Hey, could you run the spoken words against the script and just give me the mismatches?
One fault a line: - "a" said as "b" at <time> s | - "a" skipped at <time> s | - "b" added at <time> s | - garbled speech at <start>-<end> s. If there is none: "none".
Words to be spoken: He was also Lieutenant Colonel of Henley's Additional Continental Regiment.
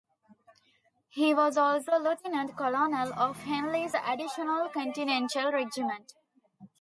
none